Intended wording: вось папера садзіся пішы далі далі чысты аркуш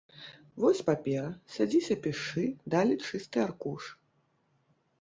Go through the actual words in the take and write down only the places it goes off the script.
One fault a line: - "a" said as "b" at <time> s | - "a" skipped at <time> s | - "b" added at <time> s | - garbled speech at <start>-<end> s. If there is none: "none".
- "далі" skipped at 2.9 s